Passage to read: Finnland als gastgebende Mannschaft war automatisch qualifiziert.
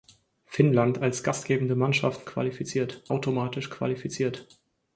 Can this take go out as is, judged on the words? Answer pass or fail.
fail